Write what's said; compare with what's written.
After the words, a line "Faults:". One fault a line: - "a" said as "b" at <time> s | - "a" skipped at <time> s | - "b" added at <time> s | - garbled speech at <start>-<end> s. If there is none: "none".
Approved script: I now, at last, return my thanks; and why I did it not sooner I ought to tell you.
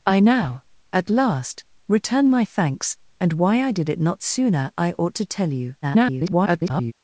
I now, at last, return my thanks; and why I did it not sooner I ought to tell you. [garbled]
Faults:
- garbled speech at 5.8-6.9 s